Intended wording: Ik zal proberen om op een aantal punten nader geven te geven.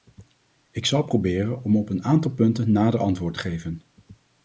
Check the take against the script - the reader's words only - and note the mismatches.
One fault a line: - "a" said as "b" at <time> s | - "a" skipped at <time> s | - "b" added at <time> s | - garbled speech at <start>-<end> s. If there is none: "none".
- "geven" said as "antwoord" at 3.0 s